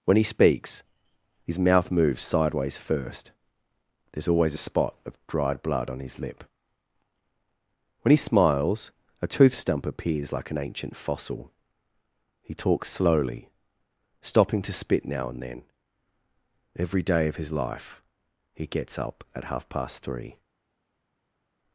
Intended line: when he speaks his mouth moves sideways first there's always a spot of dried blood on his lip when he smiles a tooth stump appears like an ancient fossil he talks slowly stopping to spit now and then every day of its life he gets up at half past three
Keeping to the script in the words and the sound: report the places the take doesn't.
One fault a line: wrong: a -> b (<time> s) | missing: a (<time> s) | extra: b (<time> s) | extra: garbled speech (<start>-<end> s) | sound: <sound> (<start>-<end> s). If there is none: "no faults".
wrong: its -> his (17.3 s)